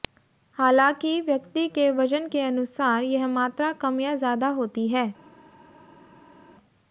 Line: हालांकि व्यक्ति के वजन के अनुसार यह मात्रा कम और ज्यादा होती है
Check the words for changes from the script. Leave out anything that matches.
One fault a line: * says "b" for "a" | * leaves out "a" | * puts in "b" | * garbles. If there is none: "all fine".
* says "या" for "और"